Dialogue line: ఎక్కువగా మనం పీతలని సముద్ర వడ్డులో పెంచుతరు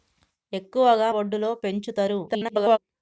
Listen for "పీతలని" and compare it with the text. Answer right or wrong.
wrong